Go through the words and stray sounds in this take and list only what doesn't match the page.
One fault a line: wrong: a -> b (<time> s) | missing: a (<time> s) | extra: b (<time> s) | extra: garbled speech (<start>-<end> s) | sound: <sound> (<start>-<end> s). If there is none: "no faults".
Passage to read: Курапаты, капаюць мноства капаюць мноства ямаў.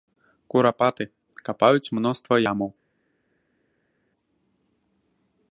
missing: капаюць мноства (2.3 s)